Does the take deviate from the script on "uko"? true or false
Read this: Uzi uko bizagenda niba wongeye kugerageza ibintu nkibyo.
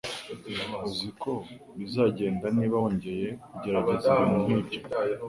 false